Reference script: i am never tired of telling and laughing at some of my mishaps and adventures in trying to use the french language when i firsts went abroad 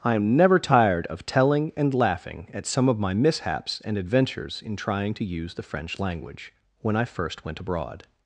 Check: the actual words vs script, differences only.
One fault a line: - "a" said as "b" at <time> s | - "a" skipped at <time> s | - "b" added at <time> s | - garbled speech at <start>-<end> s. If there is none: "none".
- "firsts" said as "first" at 7.0 s